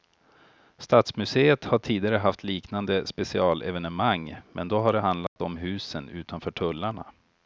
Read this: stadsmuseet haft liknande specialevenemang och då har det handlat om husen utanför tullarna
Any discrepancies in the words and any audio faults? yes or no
yes